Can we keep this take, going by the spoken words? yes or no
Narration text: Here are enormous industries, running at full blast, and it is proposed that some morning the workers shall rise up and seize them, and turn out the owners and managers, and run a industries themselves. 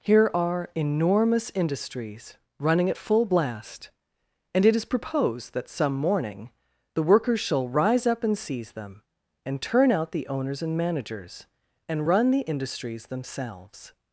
no